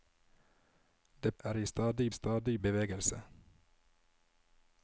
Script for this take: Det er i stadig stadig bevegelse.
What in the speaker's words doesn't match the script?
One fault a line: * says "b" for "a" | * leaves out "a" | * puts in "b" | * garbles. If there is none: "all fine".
all fine